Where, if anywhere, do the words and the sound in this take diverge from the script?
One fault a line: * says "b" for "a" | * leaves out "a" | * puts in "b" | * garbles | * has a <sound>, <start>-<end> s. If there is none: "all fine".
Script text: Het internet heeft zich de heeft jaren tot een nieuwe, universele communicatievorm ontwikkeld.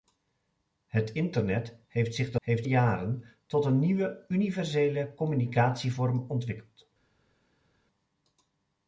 all fine